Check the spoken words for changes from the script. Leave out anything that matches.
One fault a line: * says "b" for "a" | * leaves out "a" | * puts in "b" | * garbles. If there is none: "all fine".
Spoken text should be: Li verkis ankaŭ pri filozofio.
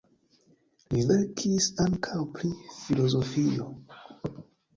all fine